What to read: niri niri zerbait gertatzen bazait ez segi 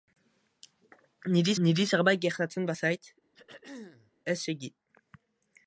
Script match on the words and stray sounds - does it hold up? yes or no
no